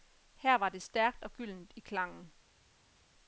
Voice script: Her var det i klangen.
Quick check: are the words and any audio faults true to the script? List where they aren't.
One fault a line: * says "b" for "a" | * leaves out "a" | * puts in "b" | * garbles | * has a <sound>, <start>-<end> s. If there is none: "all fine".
* puts in "stærkt og gyldent"